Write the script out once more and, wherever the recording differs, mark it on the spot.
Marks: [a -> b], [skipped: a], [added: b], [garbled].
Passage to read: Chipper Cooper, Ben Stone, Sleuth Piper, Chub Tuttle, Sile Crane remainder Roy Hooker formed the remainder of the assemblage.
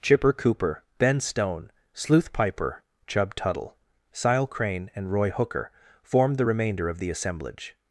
Chipper Cooper, Ben Stone, Sleuth Piper, Chub Tuttle, Sile Crane [remainder -> and] Roy Hooker formed the remainder of the assemblage.